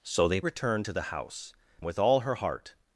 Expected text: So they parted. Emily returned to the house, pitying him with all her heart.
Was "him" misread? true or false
true